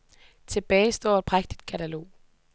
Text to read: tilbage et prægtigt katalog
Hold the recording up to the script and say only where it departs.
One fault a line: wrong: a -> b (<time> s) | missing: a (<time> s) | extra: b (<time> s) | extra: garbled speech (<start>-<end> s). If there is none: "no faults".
extra: står (0.9 s)